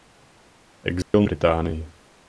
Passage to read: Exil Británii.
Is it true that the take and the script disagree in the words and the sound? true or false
true